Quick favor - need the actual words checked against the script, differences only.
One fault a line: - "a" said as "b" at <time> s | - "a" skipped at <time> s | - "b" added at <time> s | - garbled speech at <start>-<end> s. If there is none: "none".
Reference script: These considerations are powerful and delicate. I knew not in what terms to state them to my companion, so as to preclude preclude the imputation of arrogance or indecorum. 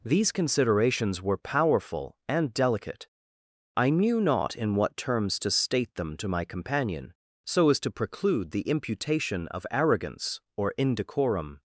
- "are" said as "were" at 1.2 s
- "preclude" skipped at 8.5 s